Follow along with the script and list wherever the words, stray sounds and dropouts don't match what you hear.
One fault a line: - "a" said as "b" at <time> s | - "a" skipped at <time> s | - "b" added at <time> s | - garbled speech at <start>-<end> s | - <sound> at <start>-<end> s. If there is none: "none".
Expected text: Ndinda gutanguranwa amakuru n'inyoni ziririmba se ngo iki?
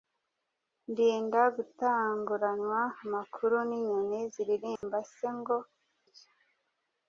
- dropout at 4.8-4.8 s